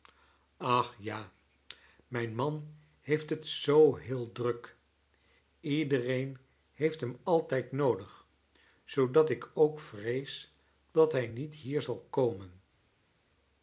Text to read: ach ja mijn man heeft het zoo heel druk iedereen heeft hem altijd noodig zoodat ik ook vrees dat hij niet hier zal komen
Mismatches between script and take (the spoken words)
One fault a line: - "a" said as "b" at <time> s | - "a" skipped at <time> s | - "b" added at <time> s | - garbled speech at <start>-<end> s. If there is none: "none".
none